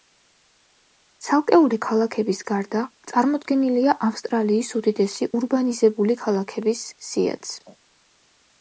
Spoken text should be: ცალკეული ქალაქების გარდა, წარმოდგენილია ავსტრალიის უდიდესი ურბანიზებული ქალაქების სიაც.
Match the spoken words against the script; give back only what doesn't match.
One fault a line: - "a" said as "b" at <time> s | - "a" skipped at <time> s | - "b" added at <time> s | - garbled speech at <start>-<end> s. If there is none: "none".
none